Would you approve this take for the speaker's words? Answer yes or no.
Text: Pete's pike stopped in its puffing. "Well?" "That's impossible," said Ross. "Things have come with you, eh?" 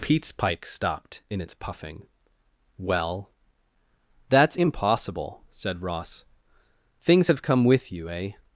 yes